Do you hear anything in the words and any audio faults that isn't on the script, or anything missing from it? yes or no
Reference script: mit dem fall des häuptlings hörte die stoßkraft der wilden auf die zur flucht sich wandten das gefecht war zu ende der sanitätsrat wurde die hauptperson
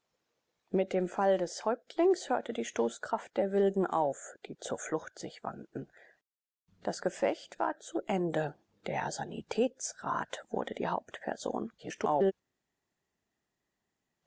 yes